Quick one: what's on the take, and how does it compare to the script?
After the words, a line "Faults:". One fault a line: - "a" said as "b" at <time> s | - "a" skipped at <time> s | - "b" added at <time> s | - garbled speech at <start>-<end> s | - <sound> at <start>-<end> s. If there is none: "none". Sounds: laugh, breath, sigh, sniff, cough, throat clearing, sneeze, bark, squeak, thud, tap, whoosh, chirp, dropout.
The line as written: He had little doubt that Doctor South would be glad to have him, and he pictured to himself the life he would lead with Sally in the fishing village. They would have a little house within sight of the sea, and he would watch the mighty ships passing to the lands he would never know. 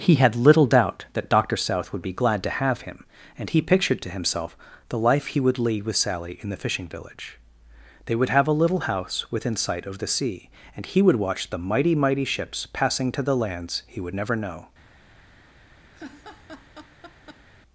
He had little doubt that Doctor South would be glad to have him, and he pictured to himself the life he would lead with Sally in the fishing village. They would have a little house within sight of the sea, and he would watch the mighty mighty ships passing to the lands he would never know.
Faults:
- "mighty" added at 11.9 s
- laugh at 15.9-17.5 s